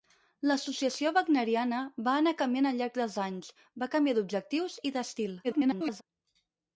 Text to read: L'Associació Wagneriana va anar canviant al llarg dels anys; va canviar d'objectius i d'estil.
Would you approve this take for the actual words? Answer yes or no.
no